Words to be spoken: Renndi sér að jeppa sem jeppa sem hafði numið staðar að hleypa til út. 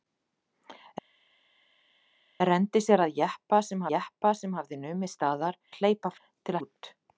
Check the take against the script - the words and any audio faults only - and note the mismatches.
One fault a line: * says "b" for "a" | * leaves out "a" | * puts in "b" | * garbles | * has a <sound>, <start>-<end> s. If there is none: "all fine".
all fine